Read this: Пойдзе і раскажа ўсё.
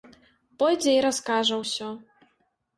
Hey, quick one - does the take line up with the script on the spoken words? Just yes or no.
yes